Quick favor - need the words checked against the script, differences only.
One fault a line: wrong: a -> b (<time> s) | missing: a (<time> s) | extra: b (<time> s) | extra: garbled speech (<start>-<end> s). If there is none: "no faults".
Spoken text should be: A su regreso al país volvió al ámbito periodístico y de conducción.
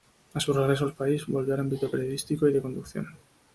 no faults